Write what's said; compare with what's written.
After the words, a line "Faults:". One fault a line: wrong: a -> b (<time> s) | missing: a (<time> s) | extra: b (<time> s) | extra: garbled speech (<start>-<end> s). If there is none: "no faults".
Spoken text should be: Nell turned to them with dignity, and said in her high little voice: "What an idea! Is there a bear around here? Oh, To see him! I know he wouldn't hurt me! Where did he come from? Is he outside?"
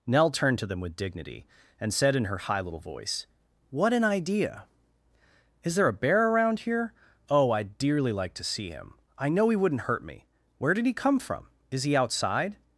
Nell turned to them with dignity, and said in her high little voice: "What an idea! Is there a bear around here? Oh, I'd dearly like to see him! I know he wouldn't hurt me! Where did he come from? Is he outside?"
Faults:
extra: I'd dearly like (7.5 s)